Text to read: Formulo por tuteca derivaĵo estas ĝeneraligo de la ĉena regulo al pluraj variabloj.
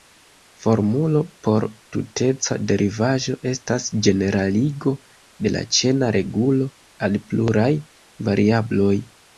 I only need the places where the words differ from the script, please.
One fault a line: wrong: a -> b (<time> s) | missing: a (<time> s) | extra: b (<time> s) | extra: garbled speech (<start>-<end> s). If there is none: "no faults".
no faults